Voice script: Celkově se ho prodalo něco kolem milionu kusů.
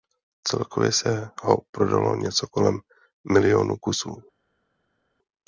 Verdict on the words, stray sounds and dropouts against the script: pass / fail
pass